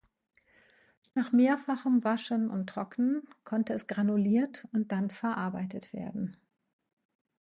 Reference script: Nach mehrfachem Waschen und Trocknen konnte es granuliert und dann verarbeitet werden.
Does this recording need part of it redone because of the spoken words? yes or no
no